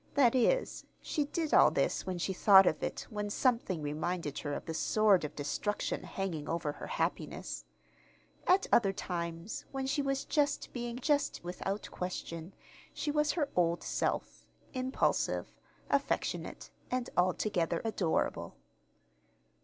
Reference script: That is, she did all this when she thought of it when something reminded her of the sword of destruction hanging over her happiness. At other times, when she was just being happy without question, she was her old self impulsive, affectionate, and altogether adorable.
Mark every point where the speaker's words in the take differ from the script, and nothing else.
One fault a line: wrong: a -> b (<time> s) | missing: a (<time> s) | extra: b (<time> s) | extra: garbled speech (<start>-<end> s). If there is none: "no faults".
wrong: happy -> just (11.0 s)